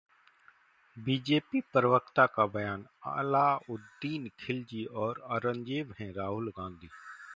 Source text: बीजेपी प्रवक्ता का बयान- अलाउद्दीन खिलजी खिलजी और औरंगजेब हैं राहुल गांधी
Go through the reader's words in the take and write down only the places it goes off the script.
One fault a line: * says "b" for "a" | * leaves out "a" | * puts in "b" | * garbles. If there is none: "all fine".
* leaves out "खिलजी"